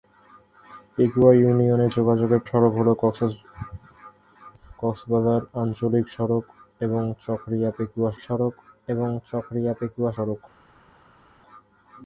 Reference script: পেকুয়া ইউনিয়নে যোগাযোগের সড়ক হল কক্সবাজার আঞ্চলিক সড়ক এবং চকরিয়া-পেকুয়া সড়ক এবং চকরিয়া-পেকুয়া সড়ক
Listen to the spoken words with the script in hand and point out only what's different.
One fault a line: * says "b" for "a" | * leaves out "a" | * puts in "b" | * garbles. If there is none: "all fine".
all fine